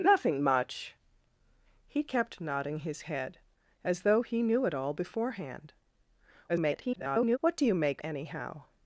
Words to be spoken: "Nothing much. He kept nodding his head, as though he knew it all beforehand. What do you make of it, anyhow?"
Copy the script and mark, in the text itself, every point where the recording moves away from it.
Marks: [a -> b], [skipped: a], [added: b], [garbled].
"Nothing much. He kept nodding his head, as though he knew it all beforehand. [garbled] What do you make [skipped: of it,] anyhow?"